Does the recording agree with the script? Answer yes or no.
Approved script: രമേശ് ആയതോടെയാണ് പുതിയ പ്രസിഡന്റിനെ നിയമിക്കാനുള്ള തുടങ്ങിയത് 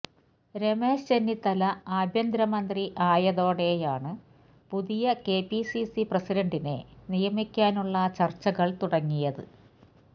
no